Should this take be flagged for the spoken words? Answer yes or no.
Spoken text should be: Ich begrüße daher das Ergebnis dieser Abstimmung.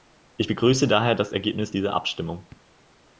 no